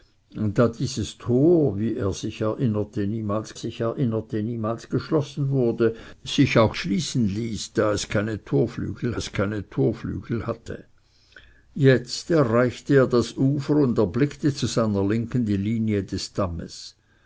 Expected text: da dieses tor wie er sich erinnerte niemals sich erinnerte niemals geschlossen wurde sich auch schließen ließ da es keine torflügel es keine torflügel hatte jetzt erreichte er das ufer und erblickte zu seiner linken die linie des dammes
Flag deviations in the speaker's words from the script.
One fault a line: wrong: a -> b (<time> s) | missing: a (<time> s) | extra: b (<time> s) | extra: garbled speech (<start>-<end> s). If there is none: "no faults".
no faults